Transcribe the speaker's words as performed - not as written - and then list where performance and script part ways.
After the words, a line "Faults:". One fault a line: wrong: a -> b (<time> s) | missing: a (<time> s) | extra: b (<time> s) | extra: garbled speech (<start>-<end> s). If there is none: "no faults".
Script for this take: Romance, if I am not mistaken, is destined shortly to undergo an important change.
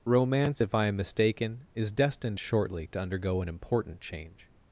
Romance, if I am mistaken, is destined shortly to undergo an important change.
Faults:
missing: not (1.0 s)